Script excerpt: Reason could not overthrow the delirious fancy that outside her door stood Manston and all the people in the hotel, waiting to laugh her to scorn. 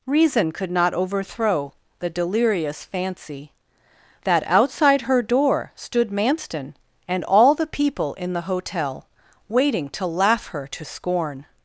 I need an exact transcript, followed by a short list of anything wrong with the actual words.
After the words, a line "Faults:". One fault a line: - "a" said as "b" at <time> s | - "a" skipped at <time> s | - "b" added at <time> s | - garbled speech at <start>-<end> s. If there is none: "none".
Reason could not overthrow the delirious fancy that outside her door stood Manston and all the people in the hotel, waiting to laugh her to scorn.
Faults:
none